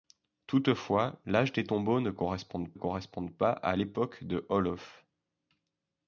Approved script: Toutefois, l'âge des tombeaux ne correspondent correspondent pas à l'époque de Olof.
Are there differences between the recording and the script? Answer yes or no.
no